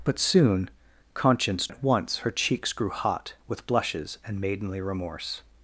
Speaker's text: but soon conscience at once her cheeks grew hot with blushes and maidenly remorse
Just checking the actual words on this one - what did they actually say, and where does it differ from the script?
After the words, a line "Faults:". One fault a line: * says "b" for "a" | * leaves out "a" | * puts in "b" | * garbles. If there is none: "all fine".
but soon conscience at once her cheeks grew hot with blushes and maidenly remorse
Faults:
all fine